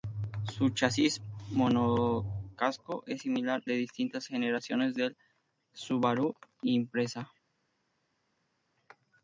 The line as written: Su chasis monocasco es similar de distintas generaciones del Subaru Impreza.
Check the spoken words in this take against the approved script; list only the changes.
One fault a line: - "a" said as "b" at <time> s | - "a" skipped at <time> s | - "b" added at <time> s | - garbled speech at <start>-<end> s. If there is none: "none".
none